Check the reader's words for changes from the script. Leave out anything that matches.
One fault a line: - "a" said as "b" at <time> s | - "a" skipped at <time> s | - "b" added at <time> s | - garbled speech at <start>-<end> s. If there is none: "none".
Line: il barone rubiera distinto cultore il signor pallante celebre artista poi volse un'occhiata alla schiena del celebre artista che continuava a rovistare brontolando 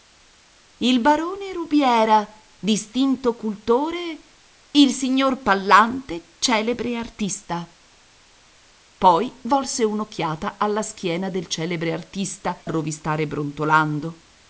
- "che continuava" skipped at 12.6 s